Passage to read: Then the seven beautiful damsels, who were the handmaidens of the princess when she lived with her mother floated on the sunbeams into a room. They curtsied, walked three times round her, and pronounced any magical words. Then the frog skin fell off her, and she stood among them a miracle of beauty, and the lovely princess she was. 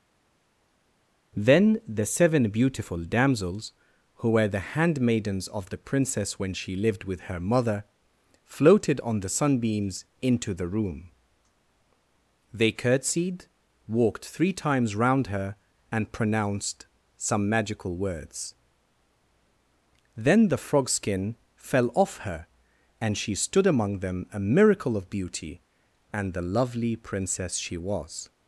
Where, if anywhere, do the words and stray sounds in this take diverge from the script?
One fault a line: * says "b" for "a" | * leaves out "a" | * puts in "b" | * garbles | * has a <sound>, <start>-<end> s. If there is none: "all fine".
* says "the" for "a"
* says "some" for "any"